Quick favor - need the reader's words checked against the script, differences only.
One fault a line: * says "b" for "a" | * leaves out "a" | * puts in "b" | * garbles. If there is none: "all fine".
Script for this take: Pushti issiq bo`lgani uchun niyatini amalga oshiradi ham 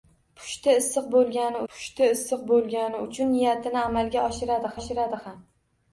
* puts in "pushti issiq bo`lgani"
* puts in "oshiradi"